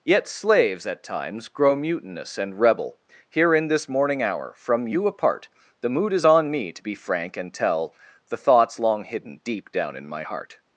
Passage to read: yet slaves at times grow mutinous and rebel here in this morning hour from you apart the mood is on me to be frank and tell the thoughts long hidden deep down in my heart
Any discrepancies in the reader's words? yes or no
no